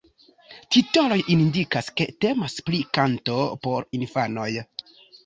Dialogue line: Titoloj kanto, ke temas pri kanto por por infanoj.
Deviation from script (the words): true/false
true